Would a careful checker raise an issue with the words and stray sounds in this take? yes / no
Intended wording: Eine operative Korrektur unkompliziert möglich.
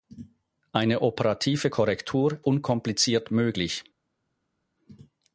no